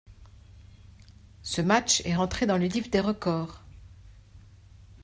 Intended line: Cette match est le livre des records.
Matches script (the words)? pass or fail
fail